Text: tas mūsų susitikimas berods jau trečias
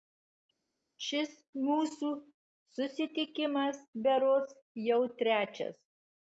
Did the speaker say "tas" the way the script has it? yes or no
no